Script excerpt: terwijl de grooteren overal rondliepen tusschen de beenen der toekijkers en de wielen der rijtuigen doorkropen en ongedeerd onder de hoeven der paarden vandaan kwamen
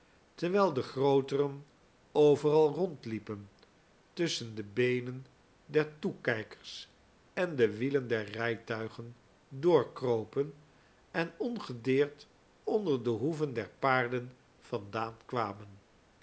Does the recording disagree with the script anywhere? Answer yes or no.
no